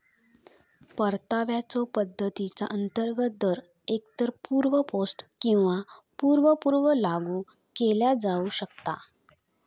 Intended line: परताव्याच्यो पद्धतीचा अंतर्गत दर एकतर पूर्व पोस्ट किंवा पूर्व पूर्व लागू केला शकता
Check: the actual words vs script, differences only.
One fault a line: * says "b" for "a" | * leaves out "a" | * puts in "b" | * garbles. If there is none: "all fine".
* puts in "जाऊ"